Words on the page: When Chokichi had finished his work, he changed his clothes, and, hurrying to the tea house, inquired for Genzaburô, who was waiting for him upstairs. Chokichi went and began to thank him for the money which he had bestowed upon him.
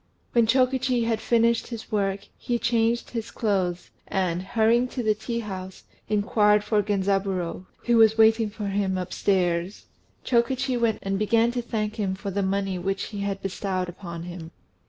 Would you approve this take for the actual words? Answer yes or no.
yes